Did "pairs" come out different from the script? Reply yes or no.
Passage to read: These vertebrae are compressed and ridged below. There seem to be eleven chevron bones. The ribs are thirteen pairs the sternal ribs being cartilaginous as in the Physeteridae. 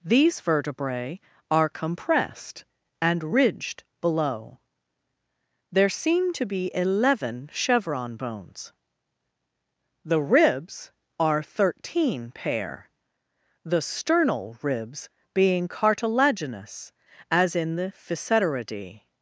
yes